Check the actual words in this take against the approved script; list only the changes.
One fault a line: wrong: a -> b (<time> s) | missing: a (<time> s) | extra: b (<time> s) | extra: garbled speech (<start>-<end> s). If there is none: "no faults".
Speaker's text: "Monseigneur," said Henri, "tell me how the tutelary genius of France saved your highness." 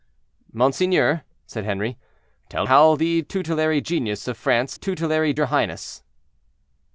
missing: me (2.6 s)
wrong: saved -> tutelary (4.7 s)